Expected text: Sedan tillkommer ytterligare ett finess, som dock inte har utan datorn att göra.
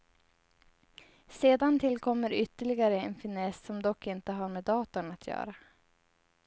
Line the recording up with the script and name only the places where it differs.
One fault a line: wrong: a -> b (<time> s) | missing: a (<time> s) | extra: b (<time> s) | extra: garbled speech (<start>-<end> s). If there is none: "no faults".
wrong: ett -> en (3.0 s)
wrong: utan -> med (4.5 s)